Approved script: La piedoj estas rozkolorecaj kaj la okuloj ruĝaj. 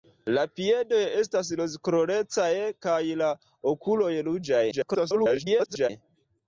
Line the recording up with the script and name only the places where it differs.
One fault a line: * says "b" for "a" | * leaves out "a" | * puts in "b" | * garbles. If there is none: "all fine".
* garbles